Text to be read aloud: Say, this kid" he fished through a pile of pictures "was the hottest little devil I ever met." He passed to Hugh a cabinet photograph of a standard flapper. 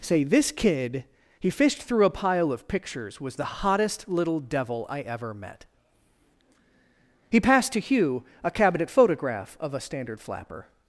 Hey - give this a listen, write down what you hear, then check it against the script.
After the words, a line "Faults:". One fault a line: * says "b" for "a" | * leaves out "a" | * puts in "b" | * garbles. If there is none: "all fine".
Say, this kid" he fished through a pile of pictures "was the hottest little devil I ever met." He passed to Hugh a cabinet photograph of a standard flapper.
Faults:
all fine